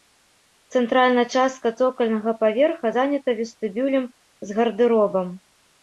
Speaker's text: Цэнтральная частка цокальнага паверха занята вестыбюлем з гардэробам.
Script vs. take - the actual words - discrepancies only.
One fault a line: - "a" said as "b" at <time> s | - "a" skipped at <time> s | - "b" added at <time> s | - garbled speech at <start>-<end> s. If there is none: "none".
none